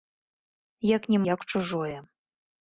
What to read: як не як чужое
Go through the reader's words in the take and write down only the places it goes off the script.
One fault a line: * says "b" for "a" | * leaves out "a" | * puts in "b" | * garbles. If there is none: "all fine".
all fine